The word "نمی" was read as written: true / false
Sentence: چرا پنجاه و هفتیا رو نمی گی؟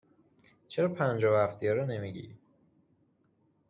true